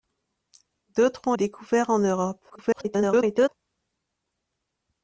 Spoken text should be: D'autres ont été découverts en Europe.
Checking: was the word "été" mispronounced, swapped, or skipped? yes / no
yes